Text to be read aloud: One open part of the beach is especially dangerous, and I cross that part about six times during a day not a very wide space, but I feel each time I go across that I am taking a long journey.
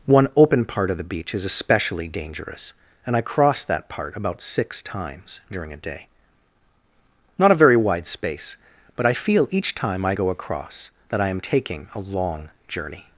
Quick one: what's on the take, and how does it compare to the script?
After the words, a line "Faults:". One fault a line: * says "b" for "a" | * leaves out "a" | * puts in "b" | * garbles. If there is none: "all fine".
One open part of the beach is especially dangerous, and I cross that part about six times during a day not a very wide space, but I feel each time I go across that I am taking a long journey.
Faults:
all fine